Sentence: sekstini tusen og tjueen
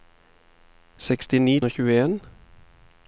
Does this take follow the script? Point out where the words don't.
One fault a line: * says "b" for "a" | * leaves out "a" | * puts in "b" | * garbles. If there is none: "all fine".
* leaves out "tusen"